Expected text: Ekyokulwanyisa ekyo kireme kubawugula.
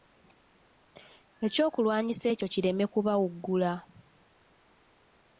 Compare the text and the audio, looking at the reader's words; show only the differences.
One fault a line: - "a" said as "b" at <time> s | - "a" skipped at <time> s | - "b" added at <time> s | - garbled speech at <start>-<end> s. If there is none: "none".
none